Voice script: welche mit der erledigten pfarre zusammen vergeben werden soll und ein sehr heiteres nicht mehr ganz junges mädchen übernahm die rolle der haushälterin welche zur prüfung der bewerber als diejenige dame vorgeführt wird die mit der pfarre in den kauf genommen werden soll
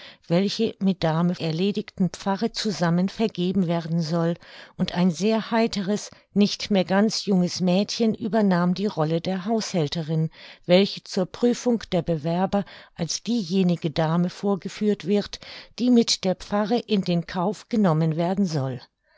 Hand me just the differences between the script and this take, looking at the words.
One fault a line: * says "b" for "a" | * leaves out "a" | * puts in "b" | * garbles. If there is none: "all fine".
* says "dame" for "der"